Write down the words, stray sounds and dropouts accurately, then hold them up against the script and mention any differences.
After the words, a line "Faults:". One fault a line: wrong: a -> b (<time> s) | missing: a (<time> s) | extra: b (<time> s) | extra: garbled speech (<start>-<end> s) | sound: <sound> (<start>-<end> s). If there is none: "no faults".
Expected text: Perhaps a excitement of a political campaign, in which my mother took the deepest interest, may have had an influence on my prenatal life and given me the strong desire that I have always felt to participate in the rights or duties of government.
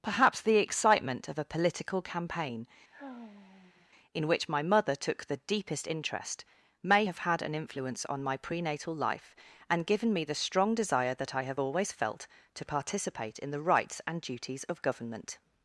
Perhaps the excitement of a political campaign, in which my mother took the deepest interest, may have had an influence on my prenatal life and given me the strong desire that I have always felt to participate in the rights and duties of government.
Faults:
wrong: a -> the (0.4 s)
sound: sigh (2.9-3.9 s)
wrong: or -> and (14.0 s)